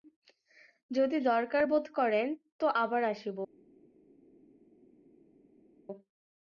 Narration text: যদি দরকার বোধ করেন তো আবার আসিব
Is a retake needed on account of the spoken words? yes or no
no